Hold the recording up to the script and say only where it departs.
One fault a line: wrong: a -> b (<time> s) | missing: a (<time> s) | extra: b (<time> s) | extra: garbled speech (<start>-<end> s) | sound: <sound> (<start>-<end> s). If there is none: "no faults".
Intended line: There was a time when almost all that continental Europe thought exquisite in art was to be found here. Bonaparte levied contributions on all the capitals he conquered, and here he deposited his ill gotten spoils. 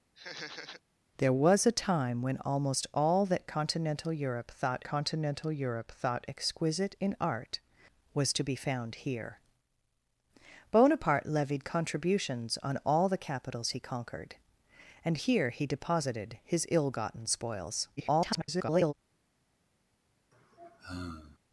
sound: laugh (0.2-0.8 s)
extra: continental Europe thought (4.8 s)
extra: garbled speech (18.0-18.9 s)
sound: sigh (20.3-21.4 s)